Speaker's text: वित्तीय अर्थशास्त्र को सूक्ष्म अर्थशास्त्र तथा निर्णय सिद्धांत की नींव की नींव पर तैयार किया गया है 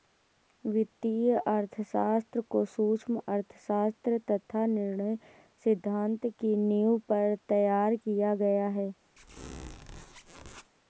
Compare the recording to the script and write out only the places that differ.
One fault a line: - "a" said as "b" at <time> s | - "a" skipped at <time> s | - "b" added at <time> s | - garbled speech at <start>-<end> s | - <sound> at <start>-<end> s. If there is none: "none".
- "की नींव" skipped at 7.0 s
- squeak at 9.2-10.7 s